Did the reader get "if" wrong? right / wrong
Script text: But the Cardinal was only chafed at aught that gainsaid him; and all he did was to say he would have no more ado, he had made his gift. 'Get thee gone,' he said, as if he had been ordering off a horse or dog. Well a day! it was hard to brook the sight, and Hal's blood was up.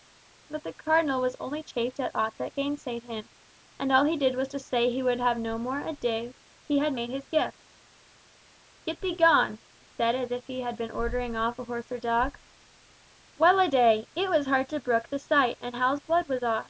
right